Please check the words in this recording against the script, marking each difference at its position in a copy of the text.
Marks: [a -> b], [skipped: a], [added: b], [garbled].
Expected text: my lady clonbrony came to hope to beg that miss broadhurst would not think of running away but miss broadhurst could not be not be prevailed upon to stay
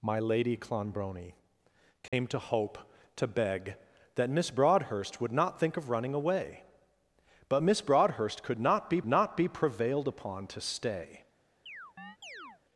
my lady clonbrony came to hope to beg that miss broadhurst would not think of running away but miss broadhurst could not be not be prevailed upon to stay